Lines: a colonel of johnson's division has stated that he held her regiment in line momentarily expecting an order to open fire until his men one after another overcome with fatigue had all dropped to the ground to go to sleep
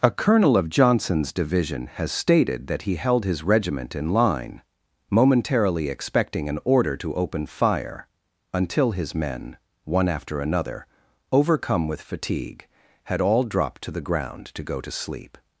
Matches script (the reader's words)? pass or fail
fail